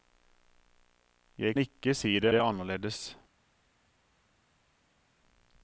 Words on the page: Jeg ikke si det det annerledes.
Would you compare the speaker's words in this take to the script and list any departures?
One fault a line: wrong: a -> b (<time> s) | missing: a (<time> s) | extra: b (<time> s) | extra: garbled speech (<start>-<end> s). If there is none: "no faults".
no faults